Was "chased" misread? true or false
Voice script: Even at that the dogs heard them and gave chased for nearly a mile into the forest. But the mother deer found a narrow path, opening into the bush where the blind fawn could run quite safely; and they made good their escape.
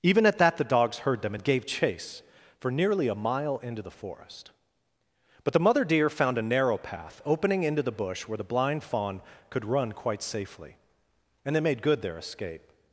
true